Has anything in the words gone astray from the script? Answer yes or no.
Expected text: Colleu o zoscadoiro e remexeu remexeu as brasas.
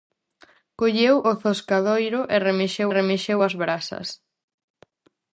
no